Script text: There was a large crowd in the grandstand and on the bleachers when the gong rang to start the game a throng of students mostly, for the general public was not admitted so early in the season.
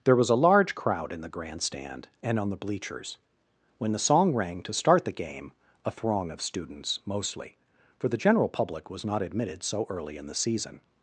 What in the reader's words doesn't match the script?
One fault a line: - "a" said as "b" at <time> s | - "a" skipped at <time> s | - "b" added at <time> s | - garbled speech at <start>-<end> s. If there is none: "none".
- "gong" said as "song" at 4.0 s